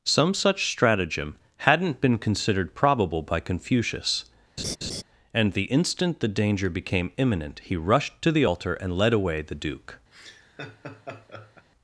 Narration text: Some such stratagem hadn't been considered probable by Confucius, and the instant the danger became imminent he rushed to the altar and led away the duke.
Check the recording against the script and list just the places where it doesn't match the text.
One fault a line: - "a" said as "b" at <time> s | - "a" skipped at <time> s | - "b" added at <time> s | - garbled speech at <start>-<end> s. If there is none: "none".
none